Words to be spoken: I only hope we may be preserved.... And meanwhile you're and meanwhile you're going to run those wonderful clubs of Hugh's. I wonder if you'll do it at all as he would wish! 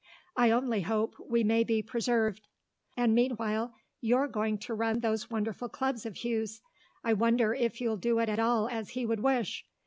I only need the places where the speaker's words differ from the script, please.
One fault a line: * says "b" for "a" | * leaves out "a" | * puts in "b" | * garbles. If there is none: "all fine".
* leaves out "and meanwhile you're"